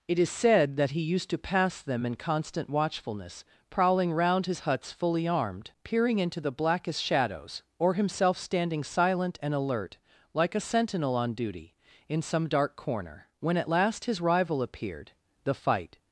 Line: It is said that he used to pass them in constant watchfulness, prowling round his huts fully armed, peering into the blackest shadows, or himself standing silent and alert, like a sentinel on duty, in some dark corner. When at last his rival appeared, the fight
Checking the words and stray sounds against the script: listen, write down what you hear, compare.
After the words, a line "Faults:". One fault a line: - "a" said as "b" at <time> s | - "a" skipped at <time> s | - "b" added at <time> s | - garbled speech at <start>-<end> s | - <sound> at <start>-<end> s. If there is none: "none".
It is said that he used to pass them in constant watchfulness, prowling round his huts fully armed, peering into the blackest shadows, or himself standing silent and alert, like a sentinel on duty, in some dark corner. When at last his rival appeared, the fight
Faults:
none